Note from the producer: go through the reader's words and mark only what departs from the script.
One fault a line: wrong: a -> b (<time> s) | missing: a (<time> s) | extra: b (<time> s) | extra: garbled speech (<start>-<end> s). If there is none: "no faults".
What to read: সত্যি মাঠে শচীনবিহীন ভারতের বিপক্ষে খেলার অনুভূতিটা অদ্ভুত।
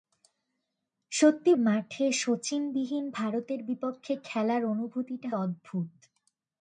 no faults